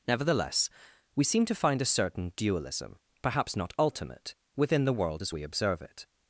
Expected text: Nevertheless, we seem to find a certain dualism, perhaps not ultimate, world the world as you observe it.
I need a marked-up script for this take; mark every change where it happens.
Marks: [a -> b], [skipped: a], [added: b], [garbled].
Nevertheless, we seem to find a certain dualism, perhaps not ultimate, [world -> within] the world as [you -> we] observe it.